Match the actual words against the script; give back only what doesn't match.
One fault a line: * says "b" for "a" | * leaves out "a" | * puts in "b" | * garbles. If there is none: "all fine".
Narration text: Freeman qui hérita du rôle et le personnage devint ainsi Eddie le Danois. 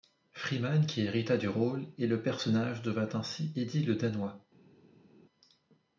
all fine